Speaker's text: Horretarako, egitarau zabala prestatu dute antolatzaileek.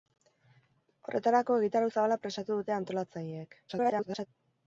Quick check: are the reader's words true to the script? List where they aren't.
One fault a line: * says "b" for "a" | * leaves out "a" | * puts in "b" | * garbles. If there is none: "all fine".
* garbles